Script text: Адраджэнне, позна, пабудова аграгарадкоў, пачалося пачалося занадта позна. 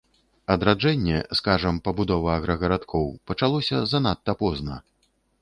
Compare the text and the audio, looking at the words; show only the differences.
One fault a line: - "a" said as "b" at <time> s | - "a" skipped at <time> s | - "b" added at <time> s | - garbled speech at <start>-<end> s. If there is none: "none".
- "позна" said as "скажам" at 1.4 s
- "пачалося" skipped at 3.9 s